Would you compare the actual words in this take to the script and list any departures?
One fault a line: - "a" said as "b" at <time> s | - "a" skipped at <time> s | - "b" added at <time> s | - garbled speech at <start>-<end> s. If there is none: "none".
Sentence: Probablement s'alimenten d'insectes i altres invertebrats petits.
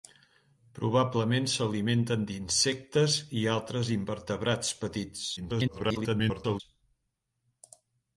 - garbled speech at 5.4-6.6 s